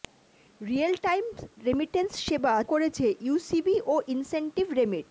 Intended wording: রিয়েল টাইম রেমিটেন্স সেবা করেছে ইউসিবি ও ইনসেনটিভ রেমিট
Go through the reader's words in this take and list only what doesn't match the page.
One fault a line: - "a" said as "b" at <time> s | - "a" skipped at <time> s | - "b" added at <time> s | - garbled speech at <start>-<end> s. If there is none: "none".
none